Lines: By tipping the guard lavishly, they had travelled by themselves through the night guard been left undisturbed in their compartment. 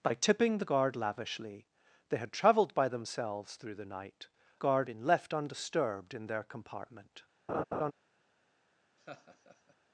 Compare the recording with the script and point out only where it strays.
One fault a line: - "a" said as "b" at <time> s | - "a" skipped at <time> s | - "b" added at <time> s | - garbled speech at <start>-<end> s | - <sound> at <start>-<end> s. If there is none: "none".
- laugh at 7.5-7.9 s
- laugh at 9.0-9.8 s